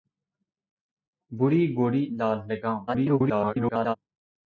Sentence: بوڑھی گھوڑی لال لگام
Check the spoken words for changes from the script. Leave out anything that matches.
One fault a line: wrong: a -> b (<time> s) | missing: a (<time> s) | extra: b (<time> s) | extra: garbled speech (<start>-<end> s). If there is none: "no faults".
extra: garbled speech (2.9-4.0 s)